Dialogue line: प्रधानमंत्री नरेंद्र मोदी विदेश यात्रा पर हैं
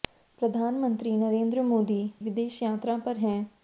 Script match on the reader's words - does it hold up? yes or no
yes